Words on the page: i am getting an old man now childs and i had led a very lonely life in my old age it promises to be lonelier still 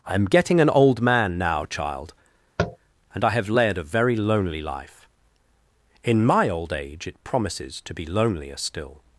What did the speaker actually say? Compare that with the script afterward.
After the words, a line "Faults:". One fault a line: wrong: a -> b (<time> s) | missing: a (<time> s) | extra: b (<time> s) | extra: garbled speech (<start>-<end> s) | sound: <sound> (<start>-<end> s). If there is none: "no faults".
i am getting an old man now child and i have led a very lonely life in my old age it promises to be lonelier still
Faults:
wrong: childs -> child (1.6 s)
sound: tap (2.6-2.8 s)
wrong: had -> have (3.3 s)